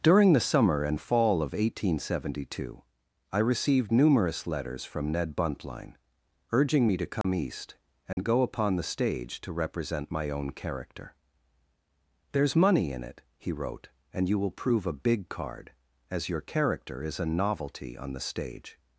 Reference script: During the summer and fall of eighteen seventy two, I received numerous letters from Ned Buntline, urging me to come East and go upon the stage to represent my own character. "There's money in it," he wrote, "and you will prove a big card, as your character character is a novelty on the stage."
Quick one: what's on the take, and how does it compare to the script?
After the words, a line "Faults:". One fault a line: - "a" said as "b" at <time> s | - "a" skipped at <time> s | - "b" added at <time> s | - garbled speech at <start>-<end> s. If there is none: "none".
During the summer and fall of eighteen seventy two, I received numerous letters from Ned Buntline, urging me to come East and go upon the stage to represent my own character. "There's money in it," he wrote, "and you will prove a big card, as your character is a novelty on the stage."
Faults:
- "character" skipped at 17.0 s